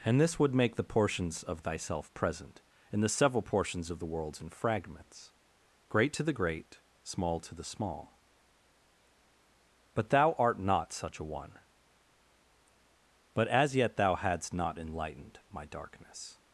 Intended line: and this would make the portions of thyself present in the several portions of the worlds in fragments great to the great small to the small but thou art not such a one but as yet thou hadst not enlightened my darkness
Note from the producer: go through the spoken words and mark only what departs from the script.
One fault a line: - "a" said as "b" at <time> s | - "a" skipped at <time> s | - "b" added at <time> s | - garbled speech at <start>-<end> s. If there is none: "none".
none